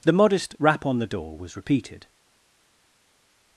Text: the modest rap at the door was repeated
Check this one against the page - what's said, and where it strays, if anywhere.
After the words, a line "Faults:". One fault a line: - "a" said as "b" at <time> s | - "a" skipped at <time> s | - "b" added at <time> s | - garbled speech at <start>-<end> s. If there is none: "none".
the modest rap on the door was repeated
Faults:
- "at" said as "on" at 0.8 s